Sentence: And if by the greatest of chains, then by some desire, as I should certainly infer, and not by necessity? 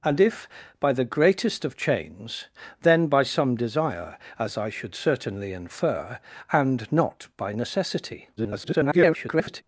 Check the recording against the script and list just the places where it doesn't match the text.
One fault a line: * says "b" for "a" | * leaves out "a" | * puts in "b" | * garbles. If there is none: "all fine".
* garbles